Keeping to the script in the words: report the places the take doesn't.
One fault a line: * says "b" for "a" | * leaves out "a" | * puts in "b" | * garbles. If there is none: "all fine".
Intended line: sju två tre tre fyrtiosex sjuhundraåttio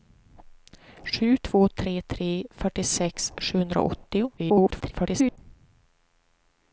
* garbles